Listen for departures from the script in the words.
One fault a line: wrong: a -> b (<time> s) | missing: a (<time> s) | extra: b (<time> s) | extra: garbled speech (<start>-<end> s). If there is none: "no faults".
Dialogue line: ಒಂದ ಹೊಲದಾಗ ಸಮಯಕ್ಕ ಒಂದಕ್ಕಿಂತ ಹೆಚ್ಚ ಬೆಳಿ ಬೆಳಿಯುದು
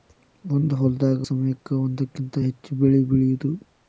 no faults